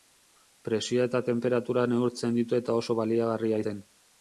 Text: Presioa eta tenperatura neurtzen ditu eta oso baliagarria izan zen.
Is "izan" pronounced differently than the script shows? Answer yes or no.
yes